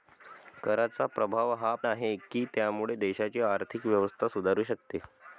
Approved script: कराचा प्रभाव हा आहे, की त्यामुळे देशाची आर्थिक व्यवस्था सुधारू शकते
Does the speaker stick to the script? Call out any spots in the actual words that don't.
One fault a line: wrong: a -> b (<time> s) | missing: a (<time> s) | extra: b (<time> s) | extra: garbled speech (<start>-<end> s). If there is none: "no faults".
no faults